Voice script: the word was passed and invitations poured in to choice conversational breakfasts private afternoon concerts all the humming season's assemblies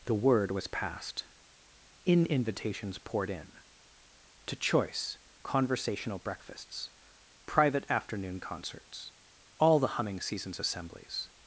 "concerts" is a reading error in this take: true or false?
false